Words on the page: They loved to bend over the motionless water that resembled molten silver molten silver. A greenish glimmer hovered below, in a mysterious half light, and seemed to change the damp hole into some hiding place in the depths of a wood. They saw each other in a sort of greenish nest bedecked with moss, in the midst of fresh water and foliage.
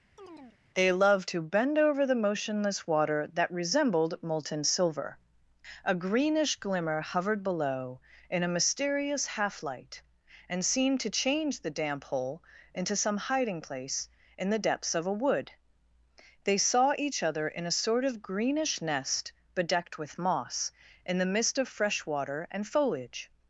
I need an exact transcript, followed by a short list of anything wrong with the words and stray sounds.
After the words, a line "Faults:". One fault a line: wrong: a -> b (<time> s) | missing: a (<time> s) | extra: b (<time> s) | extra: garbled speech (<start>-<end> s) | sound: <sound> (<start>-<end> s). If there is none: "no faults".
They loved to bend over the motionless water that resembled molten silver. A greenish glimmer hovered below, in a mysterious half light, and seemed to change the damp hole into some hiding place in the depths of a wood. They saw each other in a sort of greenish nest bedecked with moss, in the midst of fresh water and foliage.
Faults:
sound: chirp (0.2-0.6 s)
missing: molten silver (5.2 s)